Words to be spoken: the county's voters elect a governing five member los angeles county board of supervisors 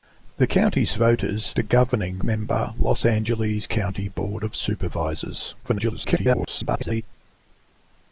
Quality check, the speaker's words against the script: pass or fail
fail